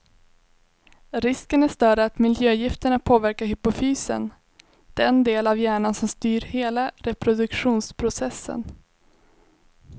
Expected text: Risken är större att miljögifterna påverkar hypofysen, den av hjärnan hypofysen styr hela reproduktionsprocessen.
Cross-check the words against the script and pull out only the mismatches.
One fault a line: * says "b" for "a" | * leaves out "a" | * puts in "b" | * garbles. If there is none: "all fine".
* puts in "del"
* says "som" for "hypofysen"